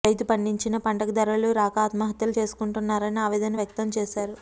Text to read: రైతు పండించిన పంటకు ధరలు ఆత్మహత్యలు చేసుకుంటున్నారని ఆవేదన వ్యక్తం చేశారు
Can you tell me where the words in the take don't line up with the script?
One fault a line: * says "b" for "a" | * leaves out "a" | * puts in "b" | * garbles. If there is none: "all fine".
* puts in "రాక"